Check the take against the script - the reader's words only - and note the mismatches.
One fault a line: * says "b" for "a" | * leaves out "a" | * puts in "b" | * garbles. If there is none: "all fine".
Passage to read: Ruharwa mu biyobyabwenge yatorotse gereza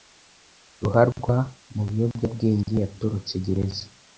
all fine